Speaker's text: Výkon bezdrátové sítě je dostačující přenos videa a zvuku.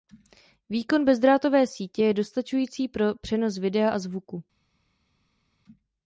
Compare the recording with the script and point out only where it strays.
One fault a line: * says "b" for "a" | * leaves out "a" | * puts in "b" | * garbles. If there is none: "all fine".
* puts in "pro"